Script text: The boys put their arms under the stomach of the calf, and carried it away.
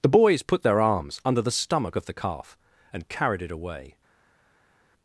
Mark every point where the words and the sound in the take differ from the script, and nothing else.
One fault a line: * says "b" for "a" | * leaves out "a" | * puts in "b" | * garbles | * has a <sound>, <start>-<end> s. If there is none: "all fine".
all fine